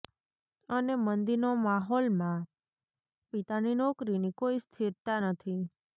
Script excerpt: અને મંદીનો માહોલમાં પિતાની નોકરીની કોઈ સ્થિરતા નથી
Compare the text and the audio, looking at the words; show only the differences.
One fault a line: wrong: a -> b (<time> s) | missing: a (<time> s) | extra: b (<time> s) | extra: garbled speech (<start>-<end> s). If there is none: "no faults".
no faults